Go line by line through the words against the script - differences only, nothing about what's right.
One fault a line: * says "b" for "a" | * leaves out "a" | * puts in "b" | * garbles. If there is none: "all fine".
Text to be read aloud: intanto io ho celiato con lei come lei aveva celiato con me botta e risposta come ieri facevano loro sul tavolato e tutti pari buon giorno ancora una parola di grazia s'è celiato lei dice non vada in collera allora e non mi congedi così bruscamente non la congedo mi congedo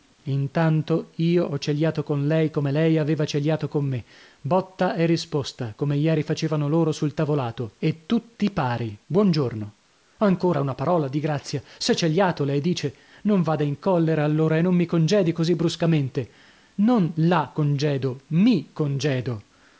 all fine